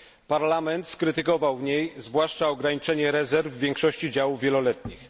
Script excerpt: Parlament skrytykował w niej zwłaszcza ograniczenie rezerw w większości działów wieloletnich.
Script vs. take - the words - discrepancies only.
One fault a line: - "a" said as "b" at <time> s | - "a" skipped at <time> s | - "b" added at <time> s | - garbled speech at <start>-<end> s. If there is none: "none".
none